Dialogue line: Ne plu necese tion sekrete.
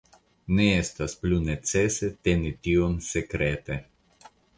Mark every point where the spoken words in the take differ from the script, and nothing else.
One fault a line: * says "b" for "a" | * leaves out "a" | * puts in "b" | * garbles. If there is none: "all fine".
* puts in "estas"
* puts in "teni"